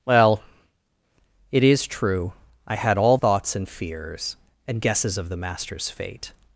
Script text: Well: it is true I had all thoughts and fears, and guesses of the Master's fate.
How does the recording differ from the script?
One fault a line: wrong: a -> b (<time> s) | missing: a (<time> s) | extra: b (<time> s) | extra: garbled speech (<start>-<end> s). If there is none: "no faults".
no faults